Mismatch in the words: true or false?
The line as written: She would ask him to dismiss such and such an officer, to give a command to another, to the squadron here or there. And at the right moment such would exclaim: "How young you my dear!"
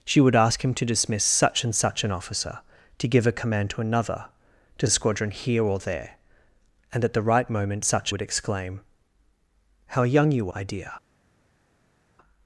false